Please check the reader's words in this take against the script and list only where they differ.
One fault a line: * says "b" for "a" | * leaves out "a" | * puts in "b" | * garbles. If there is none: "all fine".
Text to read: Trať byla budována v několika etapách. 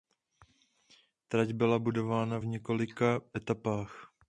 all fine